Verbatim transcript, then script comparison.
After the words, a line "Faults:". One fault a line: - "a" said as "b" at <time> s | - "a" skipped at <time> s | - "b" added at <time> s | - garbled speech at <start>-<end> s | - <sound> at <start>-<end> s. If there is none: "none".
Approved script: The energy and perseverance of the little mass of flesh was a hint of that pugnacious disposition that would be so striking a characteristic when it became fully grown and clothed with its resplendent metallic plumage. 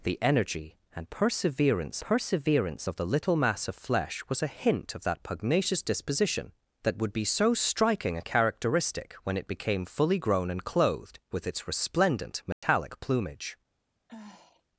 The energy and perseverance perseverance of the little mass of flesh was a hint of that pugnacious disposition that would be so striking a characteristic when it became fully grown and clothed with its resplendent metallic plumage.
Faults:
- "perseverance" added at 2.0 s
- dropout at 12.5-12.6 s
- sigh at 14.1-14.6 s